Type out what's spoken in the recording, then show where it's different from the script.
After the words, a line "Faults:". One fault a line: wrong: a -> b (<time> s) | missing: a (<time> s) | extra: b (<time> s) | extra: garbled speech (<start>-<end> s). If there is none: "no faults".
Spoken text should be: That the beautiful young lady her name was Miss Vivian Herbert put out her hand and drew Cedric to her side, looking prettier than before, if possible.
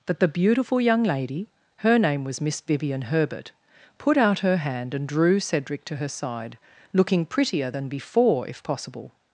That the beautiful young lady her name was Miss Vivian Herbert put out her hand and drew Cedric to her side, looking prettier than before, if possible.
Faults:
no faults